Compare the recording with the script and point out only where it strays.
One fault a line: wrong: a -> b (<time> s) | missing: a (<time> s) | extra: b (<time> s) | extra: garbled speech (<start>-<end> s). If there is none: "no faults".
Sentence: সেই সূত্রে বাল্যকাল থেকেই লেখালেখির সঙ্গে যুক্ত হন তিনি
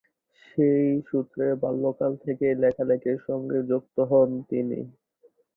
no faults